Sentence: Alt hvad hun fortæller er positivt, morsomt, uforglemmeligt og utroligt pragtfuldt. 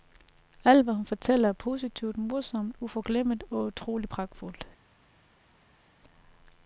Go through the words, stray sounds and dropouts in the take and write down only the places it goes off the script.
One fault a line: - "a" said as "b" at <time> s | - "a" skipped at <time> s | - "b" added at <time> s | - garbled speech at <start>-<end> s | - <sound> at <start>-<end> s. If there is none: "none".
none